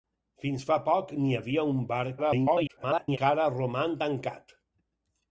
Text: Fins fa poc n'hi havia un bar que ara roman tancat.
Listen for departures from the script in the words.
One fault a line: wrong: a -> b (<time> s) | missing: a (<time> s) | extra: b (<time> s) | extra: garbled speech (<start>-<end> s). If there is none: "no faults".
extra: garbled speech (2.2-3.2 s)